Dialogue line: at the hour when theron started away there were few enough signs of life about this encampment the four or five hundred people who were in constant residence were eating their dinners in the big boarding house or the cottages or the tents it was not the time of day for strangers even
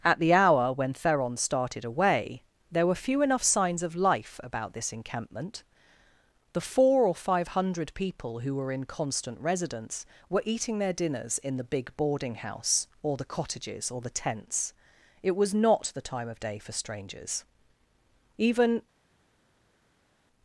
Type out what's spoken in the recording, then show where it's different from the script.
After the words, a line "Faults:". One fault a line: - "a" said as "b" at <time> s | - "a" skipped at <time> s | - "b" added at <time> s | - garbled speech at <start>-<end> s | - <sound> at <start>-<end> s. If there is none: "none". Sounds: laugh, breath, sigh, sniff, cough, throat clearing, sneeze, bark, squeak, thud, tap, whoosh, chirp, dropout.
at the hour when theron started away there were few enough signs of life about this encampment the four or five hundred people who were in constant residence were eating their dinners in the big boarding house or the cottages or the tents it was not the time of day for strangers even
Faults:
none